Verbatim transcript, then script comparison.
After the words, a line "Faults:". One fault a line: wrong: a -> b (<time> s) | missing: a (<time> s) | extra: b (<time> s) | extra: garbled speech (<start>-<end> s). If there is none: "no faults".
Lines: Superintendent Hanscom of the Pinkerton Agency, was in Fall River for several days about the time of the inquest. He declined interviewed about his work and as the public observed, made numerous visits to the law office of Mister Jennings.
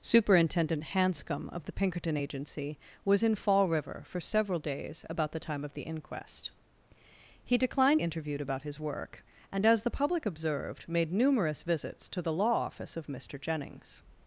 Superintendent Hanscom of the Pinkerton Agency, was in Fall River for several days about the time of the inquest. He declined interviewed about his work and as the public observed, made numerous visits to the law office of Mister Jennings.
Faults:
no faults